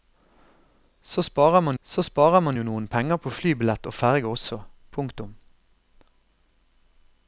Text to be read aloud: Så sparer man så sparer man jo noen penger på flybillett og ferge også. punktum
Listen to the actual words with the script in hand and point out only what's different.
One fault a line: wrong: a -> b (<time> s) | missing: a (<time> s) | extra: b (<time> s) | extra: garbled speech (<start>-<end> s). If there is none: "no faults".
no faults